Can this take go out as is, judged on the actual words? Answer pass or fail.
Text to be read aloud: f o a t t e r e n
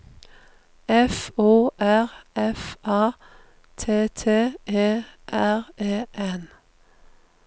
fail